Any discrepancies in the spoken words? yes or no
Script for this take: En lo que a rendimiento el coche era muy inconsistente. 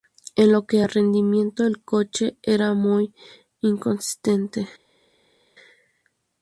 no